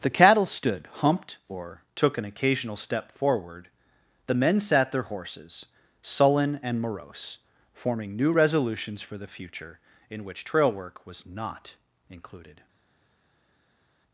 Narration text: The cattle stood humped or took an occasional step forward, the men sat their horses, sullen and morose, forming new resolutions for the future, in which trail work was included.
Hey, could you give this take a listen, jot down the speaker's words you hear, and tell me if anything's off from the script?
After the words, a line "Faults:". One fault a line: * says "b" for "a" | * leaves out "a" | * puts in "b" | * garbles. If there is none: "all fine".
The cattle stood humped or took an occasional step forward, the men sat their horses, sullen and morose, forming new resolutions for the future, in which trail work was not included.
Faults:
* puts in "not"